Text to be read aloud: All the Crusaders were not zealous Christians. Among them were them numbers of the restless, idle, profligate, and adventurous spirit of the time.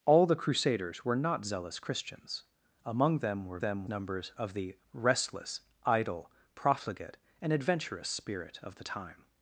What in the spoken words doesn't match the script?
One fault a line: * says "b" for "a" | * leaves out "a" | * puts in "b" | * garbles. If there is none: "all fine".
all fine